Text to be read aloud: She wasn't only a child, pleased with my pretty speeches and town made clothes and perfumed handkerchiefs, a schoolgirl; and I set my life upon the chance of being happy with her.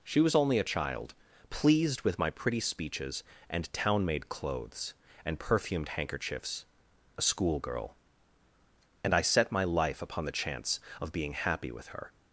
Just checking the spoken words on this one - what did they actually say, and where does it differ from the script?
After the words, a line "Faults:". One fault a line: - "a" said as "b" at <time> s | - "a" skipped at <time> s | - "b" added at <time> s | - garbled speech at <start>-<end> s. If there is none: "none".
She was only a child, pleased with my pretty speeches and town made clothes and perfumed handkerchiefs, a schoolgirl; and I set my life upon the chance of being happy with her.
Faults:
- "wasn't" said as "was" at 0.2 s